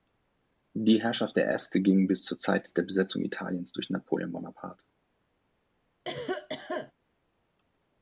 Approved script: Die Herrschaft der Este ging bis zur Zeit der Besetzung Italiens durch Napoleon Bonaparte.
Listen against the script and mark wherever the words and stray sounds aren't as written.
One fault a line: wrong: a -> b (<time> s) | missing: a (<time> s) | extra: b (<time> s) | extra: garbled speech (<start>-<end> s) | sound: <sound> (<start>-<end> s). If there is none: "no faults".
sound: cough (6.0-6.9 s)